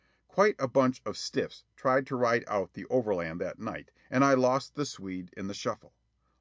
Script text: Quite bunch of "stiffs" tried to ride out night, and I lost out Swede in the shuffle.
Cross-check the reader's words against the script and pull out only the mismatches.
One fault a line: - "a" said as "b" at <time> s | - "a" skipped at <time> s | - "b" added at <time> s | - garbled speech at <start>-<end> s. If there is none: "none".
- "a" added at 0.6 s
- "the overland that" added at 2.7 s
- "out" said as "the" at 4.8 s